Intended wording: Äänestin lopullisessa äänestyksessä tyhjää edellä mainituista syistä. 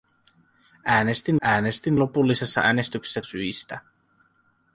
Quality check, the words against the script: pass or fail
fail